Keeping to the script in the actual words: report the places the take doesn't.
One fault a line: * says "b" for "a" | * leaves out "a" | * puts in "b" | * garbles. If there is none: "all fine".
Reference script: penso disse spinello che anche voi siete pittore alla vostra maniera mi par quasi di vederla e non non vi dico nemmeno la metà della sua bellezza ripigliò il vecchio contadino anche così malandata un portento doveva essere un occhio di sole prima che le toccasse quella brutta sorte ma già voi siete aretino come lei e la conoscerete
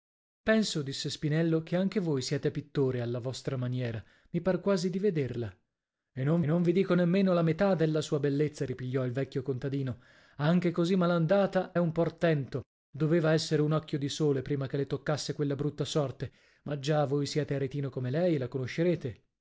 all fine